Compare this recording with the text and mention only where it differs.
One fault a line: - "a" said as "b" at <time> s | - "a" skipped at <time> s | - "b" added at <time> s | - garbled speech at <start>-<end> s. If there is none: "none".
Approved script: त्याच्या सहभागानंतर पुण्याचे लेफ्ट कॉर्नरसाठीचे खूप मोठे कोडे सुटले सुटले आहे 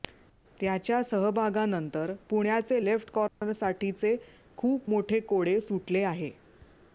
- "सुटले" skipped at 6.0 s